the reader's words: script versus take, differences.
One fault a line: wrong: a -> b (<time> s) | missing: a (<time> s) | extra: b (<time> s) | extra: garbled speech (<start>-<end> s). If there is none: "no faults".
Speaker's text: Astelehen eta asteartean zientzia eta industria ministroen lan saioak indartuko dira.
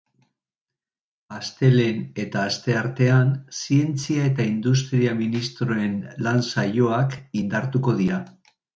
no faults